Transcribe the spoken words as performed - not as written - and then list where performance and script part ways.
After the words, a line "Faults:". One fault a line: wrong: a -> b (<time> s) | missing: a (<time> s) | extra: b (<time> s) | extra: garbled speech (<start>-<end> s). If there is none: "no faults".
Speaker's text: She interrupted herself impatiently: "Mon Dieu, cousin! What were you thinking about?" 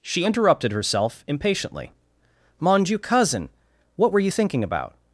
She interrupted herself impatiently: "Mon Dieu, cousin! What were you thinking about?"
Faults:
no faults